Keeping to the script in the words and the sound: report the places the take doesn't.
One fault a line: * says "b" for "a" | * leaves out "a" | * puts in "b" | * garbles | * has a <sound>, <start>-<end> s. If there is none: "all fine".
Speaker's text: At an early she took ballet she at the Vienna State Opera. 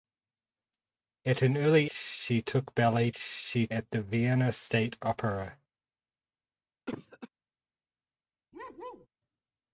* has a cough, 6.9-7.3 s
* has a bark, 8.5-9.1 s